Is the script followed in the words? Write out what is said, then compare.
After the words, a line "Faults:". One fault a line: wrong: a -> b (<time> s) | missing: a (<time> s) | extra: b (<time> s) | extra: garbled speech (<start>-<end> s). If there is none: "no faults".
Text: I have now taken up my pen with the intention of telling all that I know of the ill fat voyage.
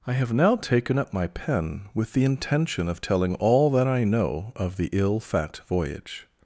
I have now taken up my pen with the intention of telling all that I know of the ill fat voyage.
Faults:
no faults